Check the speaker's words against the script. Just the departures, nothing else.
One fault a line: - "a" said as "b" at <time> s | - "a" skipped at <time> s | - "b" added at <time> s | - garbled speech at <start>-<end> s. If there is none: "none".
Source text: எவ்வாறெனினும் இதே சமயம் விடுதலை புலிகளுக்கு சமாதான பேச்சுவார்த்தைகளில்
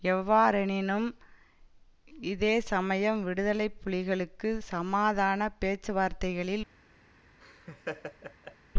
none